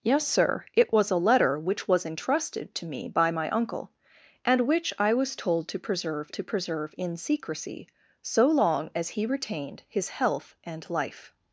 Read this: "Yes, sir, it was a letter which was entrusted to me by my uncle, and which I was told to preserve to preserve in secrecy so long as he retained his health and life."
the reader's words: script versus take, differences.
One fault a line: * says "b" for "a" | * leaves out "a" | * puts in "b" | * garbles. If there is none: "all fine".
all fine